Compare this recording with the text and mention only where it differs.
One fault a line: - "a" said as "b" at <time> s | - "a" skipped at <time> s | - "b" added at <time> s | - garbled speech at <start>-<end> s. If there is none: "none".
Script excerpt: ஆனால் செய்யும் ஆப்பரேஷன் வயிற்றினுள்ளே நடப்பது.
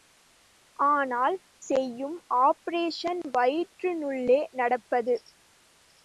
none